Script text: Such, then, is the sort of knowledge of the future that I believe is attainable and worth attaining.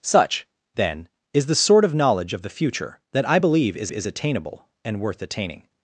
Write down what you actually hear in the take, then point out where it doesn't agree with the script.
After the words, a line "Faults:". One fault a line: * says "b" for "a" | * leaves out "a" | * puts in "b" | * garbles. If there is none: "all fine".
Such, then, is the sort of knowledge of the future that I believe is is attainable and worth attaining.
Faults:
* puts in "is"